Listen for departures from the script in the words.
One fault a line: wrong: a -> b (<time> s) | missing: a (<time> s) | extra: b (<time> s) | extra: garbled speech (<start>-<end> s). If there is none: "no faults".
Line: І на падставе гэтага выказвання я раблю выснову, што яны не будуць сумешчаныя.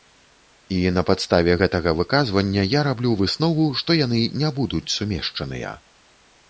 no faults